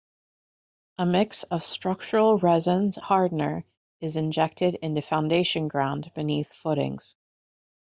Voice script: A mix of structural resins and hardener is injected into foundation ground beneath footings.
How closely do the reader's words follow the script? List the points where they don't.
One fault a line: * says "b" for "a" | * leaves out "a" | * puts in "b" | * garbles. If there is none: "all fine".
* leaves out "and"